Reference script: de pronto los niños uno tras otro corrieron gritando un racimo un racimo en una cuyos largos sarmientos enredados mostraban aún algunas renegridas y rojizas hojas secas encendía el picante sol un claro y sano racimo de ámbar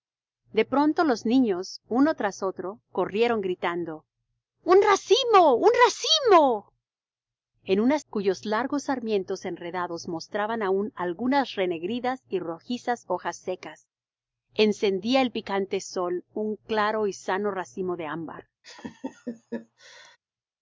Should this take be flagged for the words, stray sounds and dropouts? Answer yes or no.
yes